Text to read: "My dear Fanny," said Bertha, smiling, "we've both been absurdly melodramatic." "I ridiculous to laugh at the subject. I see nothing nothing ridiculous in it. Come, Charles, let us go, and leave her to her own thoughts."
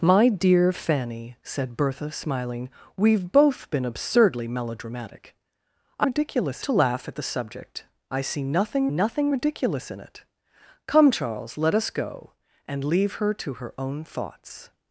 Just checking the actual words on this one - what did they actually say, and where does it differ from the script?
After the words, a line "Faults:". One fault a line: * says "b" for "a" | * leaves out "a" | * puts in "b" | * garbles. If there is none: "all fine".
"My dear Fanny," said Bertha, smiling, "we've both been absurdly melodramatic." "I ridiculous to laugh at the subject. I see nothing nothing ridiculous in it. Come, Charles, let us go, and leave her to her own thoughts."
Faults:
all fine